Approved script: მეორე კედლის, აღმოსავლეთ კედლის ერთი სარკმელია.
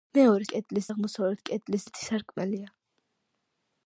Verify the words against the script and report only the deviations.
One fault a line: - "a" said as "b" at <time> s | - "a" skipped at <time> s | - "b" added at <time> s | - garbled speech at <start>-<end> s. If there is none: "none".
none